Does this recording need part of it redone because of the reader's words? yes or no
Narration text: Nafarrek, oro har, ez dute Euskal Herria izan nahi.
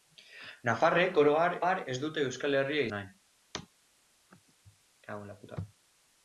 yes